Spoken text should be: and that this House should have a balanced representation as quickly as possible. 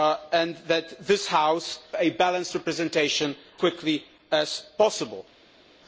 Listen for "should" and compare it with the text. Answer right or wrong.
wrong